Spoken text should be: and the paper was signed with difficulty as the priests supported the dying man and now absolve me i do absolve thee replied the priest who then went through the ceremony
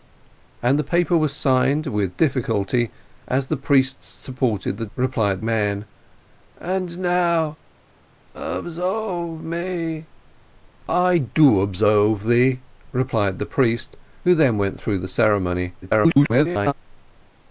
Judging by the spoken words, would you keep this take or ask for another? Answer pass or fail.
fail